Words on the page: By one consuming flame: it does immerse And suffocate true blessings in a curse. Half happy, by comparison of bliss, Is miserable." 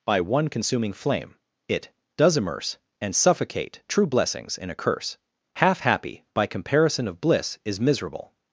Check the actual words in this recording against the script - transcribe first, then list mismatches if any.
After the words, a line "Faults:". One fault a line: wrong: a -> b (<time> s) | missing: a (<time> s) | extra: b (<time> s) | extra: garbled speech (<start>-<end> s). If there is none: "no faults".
By one consuming flame: it does immerse And suffocate true blessings in a curse. Half happy, by comparison of bliss, Is miserable."
Faults:
no faults